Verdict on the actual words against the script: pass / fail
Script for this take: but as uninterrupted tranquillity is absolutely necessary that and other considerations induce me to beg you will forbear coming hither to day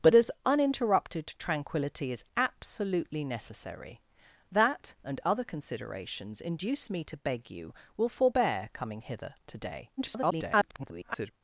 fail